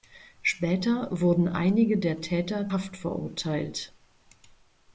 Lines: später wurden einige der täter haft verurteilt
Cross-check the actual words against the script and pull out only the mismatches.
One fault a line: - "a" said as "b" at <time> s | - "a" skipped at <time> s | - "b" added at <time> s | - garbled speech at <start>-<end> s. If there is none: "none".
none